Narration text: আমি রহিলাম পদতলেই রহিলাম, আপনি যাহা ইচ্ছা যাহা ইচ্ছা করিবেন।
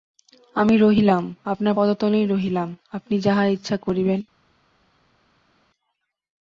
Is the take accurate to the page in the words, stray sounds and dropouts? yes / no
no